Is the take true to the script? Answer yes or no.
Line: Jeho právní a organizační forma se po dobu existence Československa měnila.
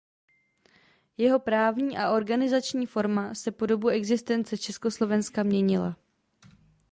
yes